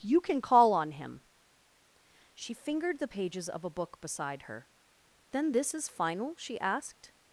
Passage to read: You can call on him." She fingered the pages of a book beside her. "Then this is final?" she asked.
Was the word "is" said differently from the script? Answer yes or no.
no